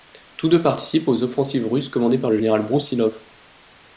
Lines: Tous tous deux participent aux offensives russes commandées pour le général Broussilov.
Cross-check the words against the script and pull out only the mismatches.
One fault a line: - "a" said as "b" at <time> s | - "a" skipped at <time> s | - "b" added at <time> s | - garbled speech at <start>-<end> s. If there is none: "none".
- "tous" skipped at 0.5 s
- "pour" said as "par" at 2.2 s